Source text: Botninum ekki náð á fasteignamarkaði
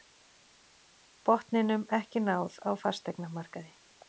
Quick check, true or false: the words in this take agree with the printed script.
true